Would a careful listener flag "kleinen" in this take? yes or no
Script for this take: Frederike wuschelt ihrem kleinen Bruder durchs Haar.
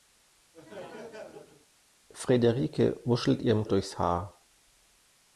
yes